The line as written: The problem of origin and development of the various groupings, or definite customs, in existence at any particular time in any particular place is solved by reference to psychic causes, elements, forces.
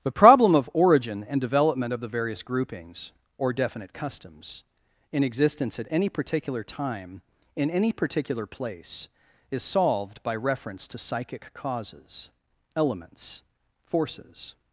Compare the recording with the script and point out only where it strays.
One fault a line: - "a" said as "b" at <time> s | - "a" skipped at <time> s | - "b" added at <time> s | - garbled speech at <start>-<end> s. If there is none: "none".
none